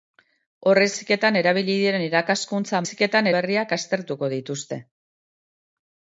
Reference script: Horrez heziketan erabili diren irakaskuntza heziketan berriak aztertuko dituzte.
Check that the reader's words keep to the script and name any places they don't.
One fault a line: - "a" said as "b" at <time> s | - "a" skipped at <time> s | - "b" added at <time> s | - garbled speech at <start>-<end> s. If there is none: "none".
none